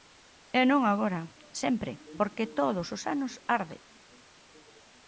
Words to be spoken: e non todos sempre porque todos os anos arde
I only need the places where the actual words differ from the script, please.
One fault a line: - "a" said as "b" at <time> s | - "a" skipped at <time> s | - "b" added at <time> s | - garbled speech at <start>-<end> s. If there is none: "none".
- "todos" said as "agora" at 0.9 s